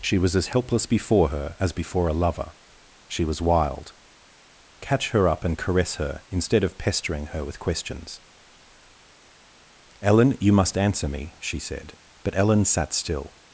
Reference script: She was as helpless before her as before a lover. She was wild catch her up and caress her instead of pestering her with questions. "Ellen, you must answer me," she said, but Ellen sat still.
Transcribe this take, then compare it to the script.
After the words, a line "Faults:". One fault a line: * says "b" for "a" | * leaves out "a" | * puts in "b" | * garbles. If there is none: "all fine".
She was as helpless before her as before a lover. She was wild catch her up and caress her instead of pestering her with questions. "Ellen, you must answer me," she said, but Ellen sat still.
Faults:
all fine